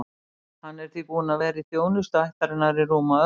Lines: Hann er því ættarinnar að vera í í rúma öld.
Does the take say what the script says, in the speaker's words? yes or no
no